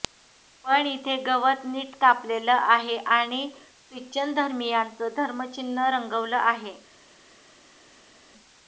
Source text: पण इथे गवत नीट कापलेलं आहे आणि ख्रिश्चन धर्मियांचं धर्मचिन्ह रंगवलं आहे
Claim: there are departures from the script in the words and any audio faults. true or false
false